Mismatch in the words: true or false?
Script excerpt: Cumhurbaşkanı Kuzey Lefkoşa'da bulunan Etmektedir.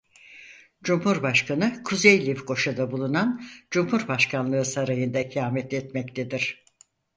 true